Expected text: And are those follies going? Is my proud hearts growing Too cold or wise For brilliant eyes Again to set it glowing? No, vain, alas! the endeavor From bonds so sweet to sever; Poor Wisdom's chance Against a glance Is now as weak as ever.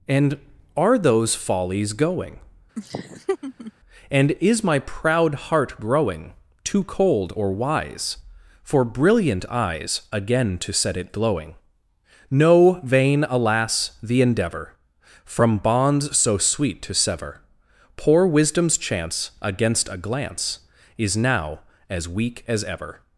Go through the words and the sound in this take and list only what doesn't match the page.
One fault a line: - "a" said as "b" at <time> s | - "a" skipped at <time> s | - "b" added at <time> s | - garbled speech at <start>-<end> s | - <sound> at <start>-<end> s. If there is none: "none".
- laugh at 2.8-3.7 s
- "And" added at 4.1 s
- "hearts" said as "heart" at 5.3 s